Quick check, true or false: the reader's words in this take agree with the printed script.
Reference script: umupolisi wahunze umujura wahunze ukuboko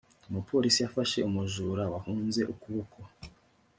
false